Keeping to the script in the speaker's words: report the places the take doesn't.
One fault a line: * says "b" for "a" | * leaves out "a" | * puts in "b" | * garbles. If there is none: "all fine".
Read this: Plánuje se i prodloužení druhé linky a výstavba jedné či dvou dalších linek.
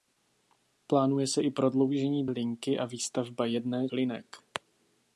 * leaves out "druhé"
* leaves out "či dvou dalších"